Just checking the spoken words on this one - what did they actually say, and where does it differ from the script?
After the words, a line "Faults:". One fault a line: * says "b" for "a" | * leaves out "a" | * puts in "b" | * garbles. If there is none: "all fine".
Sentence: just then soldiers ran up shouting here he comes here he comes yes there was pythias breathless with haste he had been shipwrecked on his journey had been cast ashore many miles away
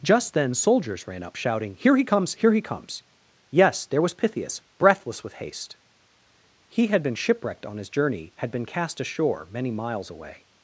just then soldiers ran up shouting here he comes here he comes yes there was pythias breathless with haste he had been shipwrecked on his journey had been cast ashore many miles away
Faults:
all fine